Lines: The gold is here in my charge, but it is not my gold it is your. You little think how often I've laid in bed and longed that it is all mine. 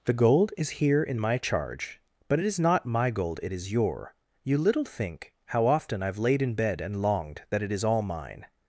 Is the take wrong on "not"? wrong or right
right